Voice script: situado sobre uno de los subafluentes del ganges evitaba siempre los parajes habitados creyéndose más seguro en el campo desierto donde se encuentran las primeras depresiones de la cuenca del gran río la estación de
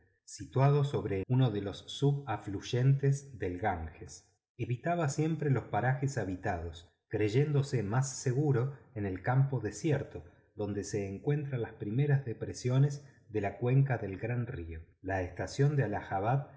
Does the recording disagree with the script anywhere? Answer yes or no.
no